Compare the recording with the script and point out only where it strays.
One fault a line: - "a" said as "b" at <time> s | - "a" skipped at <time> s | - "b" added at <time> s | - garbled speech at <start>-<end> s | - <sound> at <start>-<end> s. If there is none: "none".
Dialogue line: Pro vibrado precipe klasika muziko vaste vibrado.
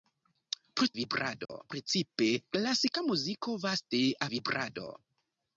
- dropout at 1.5-1.5 s